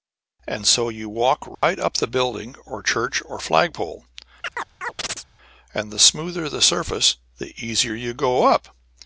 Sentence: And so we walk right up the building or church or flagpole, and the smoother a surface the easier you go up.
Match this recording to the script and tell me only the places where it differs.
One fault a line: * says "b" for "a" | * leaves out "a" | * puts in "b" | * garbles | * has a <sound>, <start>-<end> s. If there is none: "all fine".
* says "you" for "we"
* has a dropout, 1.5-1.6 s
* has a chirp, 4.4-5.3 s
* says "the" for "a"